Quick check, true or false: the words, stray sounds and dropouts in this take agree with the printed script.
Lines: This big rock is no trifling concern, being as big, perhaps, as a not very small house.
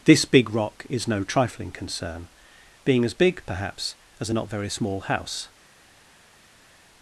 true